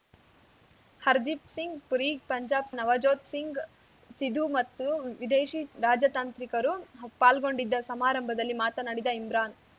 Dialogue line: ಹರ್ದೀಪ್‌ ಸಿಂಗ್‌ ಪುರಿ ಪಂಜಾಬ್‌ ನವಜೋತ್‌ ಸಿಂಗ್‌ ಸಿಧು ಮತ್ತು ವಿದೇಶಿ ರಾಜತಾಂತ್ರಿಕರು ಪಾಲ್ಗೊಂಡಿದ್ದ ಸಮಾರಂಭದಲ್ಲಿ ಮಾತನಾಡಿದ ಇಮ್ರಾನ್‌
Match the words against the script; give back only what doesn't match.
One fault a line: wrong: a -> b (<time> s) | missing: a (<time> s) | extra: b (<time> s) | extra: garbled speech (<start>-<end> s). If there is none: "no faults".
no faults